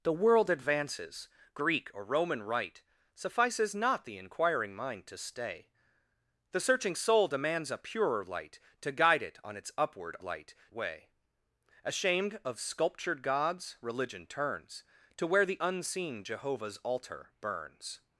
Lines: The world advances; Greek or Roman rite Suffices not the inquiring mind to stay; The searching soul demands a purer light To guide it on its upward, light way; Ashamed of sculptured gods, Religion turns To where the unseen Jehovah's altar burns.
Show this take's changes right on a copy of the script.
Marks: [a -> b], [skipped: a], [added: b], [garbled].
The world advances; Greek or Roman rite Suffices not the inquiring mind to stay; The searching soul demands a purer light To guide it on its upward, light way; Ashamed of sculptured gods, Religion turns To where the unseen Jehovah's altar burns.